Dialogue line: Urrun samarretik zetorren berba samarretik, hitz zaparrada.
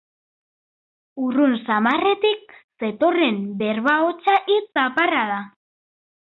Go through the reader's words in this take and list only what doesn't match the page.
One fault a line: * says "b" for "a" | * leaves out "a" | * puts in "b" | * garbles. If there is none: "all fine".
* says "hotsa" for "samarretik"